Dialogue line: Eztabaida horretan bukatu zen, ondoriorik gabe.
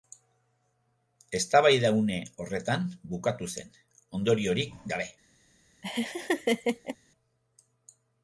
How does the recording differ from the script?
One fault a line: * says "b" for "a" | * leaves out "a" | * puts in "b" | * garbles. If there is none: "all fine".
* puts in "une"